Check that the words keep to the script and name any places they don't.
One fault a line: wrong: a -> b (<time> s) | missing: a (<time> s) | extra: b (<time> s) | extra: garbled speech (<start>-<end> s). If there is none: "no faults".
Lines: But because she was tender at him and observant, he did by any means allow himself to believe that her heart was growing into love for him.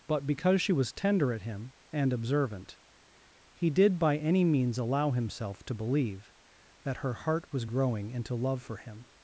no faults